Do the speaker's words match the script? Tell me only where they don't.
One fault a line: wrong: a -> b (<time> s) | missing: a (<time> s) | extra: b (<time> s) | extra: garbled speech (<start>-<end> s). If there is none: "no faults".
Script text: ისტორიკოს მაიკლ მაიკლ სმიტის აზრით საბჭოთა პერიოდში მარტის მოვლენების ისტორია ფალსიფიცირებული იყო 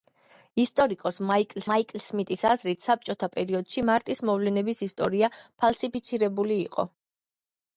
no faults